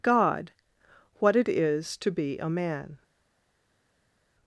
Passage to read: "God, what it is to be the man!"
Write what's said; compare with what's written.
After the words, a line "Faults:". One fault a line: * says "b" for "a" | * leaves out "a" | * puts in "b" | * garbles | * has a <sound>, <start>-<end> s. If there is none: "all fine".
"God, what it is to be a man!"
Faults:
* says "a" for "the"